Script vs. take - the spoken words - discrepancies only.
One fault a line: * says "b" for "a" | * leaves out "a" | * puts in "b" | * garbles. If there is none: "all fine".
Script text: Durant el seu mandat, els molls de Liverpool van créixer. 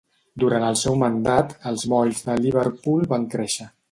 all fine